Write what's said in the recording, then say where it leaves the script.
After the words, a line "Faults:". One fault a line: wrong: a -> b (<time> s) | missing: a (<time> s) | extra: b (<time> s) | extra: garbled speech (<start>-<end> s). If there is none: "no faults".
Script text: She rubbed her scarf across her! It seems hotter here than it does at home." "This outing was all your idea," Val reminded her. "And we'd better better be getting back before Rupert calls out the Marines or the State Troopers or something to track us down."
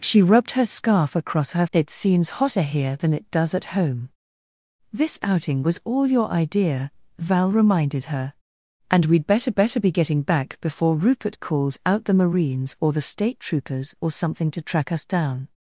She rubbed her scarf across her! It seems hotter here than it does at home." "This outing was all your idea," Val reminded her. "And we'd better better be getting back before Rupert calls out the Marines or the State Troopers or something to track us down."
Faults:
no faults